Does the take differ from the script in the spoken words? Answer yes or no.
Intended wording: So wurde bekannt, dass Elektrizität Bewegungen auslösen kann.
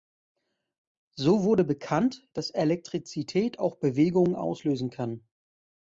yes